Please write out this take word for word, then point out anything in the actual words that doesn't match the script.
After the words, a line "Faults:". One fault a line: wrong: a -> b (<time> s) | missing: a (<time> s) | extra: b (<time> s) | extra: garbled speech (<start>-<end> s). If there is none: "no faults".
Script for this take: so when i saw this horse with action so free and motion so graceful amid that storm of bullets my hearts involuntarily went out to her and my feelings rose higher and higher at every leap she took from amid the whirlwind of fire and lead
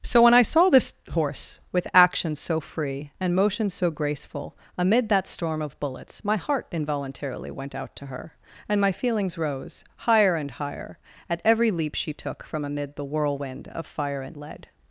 so when i saw this horse with action so free and motion so graceful amid that storm of bullets my heart involuntarily went out to her and my feelings rose higher and higher at every leap she took from amid the whirlwind of fire and lead
Faults:
wrong: hearts -> heart (6.4 s)